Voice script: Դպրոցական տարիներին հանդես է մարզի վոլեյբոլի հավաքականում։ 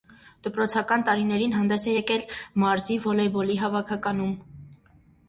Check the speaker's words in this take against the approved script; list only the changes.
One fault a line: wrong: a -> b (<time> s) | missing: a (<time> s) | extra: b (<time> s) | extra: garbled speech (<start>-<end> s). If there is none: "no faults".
extra: եկել (1.9 s)